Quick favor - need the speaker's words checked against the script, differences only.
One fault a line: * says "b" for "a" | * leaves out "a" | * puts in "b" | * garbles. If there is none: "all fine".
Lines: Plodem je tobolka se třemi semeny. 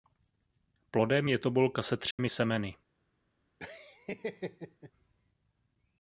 all fine